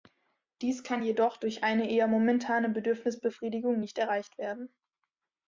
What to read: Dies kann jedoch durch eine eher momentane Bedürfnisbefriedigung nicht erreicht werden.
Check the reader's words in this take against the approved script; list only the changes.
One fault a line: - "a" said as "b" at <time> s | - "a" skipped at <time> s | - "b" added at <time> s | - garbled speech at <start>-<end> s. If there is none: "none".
none